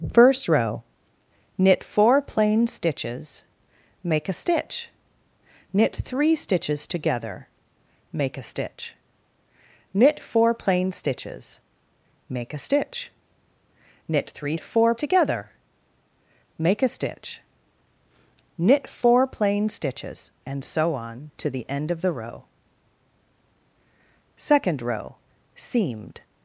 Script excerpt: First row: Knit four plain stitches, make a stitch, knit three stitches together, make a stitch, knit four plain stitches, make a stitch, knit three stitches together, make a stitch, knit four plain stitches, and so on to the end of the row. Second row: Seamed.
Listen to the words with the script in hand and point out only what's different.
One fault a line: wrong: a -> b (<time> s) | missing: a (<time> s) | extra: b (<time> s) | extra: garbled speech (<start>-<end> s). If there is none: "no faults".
wrong: stitches -> four (14.6 s)